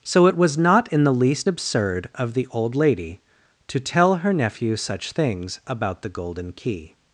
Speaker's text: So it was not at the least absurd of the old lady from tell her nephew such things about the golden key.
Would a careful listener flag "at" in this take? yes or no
yes